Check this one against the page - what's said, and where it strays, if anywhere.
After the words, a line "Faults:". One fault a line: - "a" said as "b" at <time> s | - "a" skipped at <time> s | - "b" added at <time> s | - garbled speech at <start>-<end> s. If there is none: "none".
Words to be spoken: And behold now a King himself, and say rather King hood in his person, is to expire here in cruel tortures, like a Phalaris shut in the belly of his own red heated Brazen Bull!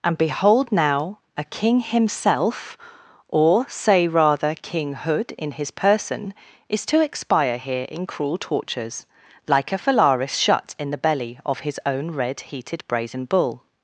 And behold now a King himself, or say rather King hood in his person, is to expire here in cruel tortures, like a Phalaris shut in the belly of his own red heated Brazen Bull!
Faults:
- "and" said as "or" at 3.3 s